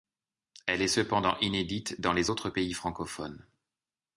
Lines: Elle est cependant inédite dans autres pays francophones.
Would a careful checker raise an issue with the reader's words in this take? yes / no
yes